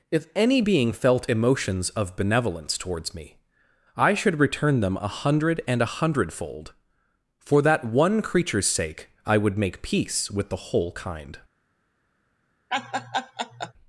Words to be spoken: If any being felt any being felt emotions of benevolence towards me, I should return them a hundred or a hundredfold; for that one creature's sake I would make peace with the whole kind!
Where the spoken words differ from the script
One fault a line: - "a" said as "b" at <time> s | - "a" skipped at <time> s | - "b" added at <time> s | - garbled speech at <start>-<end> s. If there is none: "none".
- "any being felt" skipped at 1.3 s
- "or" said as "and" at 5.7 s